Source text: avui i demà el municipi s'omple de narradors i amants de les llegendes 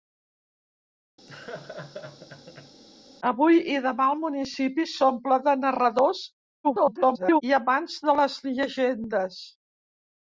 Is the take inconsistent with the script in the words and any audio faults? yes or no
yes